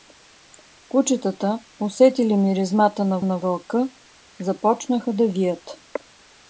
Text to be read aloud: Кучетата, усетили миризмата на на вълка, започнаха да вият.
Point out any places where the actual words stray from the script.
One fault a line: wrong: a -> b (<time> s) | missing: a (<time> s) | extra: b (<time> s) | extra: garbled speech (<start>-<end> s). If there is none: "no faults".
no faults